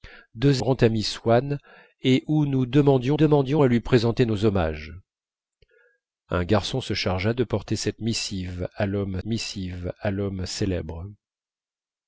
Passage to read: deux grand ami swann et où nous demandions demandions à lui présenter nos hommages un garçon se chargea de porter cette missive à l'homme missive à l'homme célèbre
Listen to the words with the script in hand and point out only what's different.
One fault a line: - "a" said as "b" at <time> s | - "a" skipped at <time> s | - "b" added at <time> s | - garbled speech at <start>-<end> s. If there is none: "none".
none